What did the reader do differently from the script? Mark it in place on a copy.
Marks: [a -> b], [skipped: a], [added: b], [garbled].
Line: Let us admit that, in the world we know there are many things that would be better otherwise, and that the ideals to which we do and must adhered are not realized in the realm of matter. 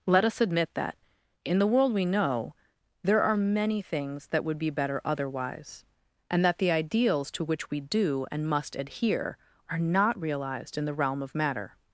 Let us admit that, in the world we know there are many things that would be better otherwise, and that the ideals to which we do and must [adhered -> adhere] are not realized in the realm of matter.